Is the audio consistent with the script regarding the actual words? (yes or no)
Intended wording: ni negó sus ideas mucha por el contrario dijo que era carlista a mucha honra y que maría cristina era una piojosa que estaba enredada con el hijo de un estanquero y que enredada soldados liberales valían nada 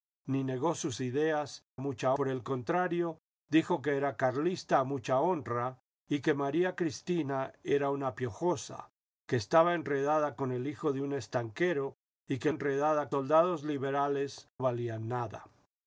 yes